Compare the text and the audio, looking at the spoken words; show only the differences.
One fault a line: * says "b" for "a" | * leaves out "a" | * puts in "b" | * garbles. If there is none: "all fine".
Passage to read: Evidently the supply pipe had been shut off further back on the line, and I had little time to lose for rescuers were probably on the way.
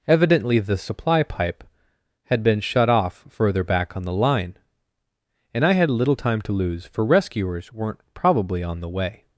* says "weren't" for "were"